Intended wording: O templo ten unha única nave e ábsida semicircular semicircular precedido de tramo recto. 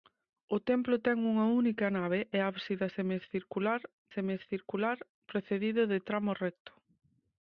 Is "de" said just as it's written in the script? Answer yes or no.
yes